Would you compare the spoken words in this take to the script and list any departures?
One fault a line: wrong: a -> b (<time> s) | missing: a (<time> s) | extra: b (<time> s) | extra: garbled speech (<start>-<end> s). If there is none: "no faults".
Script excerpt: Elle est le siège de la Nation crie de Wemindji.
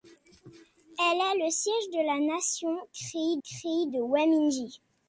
extra: crie (3.4 s)